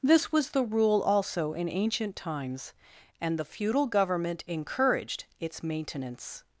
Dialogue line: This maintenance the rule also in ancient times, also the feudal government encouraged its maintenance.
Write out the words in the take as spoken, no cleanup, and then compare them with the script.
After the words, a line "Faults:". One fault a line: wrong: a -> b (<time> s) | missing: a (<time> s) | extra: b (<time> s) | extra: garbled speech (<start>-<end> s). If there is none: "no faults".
This was the rule also in ancient times, and the feudal government encouraged its maintenance.
Faults:
wrong: maintenance -> was (0.3 s)
wrong: also -> and (3.2 s)